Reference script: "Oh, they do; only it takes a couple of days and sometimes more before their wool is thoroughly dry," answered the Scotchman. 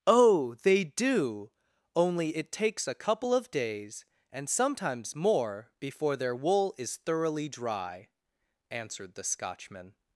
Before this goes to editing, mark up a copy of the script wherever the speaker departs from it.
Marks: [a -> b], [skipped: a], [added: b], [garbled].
"Oh, they do; only it takes a couple of days and sometimes more before their wool is thoroughly dry," answered the Scotchman.